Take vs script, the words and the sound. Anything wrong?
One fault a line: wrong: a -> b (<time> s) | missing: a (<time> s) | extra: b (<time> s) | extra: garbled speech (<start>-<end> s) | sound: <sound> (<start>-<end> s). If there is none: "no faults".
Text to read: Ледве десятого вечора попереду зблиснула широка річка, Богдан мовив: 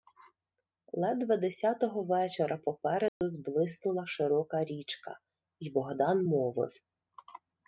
sound: dropout (3.1-3.2 s)
extra: й (5.6 s)